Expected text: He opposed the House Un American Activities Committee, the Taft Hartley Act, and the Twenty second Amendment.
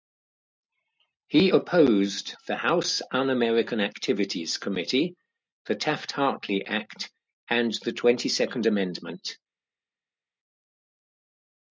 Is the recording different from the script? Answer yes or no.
no